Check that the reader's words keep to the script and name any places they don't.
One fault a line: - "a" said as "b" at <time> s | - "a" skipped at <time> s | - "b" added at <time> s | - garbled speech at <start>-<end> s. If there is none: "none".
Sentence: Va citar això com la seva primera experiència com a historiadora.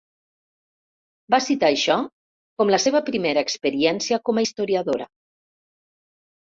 none